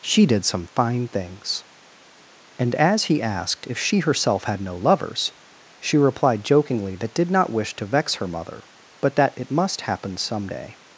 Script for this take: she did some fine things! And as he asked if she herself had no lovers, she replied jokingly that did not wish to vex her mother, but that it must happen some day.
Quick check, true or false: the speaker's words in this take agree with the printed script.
true